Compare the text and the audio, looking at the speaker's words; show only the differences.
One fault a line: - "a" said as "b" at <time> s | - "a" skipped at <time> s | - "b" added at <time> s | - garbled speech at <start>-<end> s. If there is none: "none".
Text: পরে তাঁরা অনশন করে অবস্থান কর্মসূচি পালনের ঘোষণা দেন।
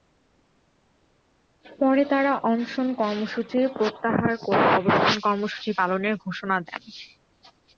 - "কর্মসূচি প্রত্যাহার" added at 3.0 s